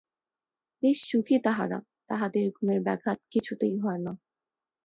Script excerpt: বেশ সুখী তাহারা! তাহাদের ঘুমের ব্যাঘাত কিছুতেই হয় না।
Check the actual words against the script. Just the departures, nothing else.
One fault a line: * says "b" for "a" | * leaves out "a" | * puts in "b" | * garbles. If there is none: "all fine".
all fine